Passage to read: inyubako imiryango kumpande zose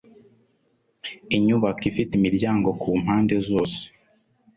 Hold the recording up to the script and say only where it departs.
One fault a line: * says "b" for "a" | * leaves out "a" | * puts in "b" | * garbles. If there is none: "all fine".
* puts in "ifite"